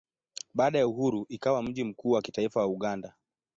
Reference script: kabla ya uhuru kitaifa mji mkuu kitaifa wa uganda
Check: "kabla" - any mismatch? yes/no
yes